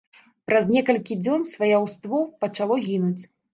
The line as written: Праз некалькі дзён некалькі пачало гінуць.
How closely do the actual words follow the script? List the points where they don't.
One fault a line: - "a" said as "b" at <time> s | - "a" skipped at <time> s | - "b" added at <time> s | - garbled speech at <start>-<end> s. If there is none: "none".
- "некалькі" said as "сваяўство" at 1.5 s